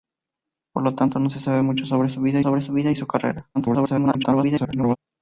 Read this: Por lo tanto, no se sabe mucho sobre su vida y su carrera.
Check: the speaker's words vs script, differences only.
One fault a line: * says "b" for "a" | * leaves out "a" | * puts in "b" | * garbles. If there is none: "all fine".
* puts in "sobre su vida"
* garbles